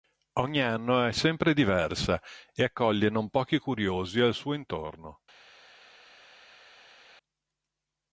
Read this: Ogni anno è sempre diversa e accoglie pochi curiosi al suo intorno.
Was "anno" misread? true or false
false